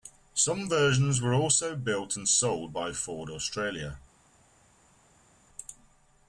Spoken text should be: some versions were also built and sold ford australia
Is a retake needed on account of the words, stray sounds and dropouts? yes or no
yes